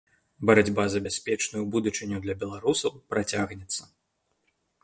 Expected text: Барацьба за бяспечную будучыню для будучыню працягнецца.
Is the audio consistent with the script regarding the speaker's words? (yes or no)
no